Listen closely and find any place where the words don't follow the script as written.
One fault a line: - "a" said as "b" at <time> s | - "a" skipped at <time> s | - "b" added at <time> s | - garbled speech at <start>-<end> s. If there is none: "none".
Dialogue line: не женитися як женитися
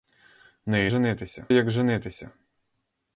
none